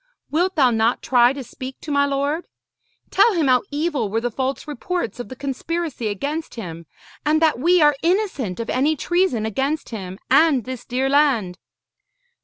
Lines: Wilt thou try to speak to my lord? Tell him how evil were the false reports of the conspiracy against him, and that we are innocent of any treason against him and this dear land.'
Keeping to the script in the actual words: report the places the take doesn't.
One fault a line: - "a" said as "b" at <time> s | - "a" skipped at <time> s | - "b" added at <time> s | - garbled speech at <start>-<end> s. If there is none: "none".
- "not" added at 0.7 s